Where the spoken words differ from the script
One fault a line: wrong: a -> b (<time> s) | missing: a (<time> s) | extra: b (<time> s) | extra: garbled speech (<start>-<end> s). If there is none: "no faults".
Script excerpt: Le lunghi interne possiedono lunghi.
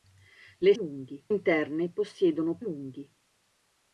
no faults